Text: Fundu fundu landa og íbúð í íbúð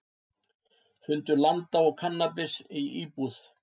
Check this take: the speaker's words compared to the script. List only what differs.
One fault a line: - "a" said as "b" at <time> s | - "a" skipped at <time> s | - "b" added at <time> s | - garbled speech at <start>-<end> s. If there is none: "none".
- "fundu" skipped at 1.4 s
- "íbúð" said as "kannabis" at 2.0 s